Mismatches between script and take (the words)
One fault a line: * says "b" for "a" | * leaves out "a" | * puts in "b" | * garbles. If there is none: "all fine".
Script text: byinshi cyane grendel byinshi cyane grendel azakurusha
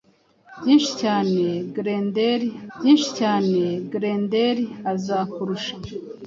all fine